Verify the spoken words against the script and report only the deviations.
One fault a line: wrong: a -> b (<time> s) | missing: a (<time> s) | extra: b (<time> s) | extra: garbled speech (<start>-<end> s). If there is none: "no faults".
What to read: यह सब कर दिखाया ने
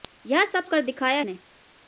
no faults